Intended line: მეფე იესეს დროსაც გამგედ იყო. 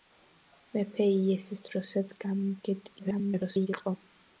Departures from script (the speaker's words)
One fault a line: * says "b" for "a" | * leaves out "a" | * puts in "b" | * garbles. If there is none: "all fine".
* garbles